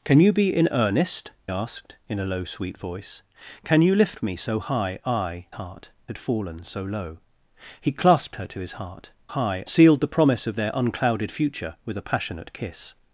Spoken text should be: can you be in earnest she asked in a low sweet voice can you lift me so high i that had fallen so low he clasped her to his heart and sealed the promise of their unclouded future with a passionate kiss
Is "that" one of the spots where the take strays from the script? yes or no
yes